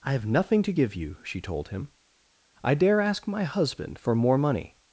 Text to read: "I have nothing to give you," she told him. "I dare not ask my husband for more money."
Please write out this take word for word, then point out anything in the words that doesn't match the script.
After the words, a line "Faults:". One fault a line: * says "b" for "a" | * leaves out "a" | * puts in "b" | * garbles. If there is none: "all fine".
"I have nothing to give you," she told him. "I dare ask my husband for more money."
Faults:
* leaves out "not"